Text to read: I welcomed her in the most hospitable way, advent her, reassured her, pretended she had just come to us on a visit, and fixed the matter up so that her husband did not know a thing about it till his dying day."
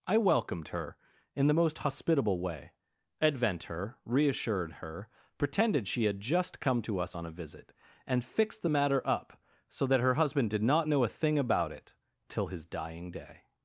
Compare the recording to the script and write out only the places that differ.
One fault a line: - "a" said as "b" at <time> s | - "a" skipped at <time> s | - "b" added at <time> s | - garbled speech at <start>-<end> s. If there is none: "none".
none